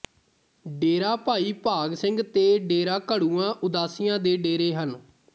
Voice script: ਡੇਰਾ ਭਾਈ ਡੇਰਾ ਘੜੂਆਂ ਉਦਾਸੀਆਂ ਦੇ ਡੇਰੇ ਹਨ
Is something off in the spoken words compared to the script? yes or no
yes